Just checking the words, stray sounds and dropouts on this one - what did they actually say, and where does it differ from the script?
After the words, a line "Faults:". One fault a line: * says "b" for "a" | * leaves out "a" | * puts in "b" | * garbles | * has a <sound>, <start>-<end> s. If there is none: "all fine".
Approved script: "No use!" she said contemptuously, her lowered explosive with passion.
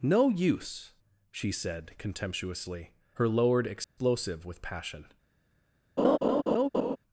"No use!" she said contemptuously, her lowered explosive with passion.
Faults:
* has a dropout, 3.8-4.0 s
* has a laugh, 6.0-7.0 s